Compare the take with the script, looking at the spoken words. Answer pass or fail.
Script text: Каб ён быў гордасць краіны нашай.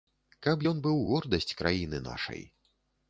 pass